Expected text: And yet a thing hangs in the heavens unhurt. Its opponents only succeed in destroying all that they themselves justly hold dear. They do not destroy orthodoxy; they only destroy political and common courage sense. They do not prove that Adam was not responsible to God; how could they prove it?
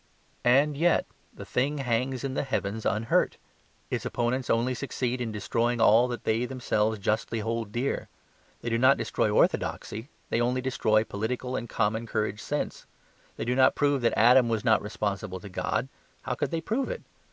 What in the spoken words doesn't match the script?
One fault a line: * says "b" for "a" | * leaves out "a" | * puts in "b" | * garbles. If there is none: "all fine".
* says "the" for "a"